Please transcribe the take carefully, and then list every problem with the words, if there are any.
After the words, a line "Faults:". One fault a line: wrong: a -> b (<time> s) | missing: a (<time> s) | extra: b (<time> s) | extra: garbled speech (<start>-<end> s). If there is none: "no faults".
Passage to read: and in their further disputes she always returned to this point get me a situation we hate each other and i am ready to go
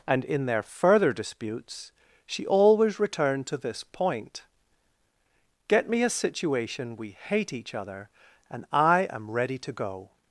and in their further disputes she always returned to this point get me a situation we hate each other and i am ready to go
Faults:
no faults